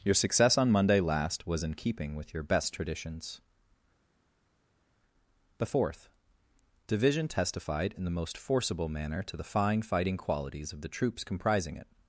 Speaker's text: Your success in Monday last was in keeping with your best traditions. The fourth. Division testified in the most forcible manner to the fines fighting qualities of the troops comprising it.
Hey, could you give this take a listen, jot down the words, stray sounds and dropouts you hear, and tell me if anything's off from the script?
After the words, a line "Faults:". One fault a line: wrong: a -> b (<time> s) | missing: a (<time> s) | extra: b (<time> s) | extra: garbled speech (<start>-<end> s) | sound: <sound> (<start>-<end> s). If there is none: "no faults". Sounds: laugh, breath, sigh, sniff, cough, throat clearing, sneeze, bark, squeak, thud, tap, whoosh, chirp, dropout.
Your success on Monday last was in keeping with your best traditions. The fourth. Division testified in the most forcible manner to the fine fighting qualities of the troops comprising it.
Faults:
wrong: in -> on (0.6 s)
wrong: fines -> fine (9.5 s)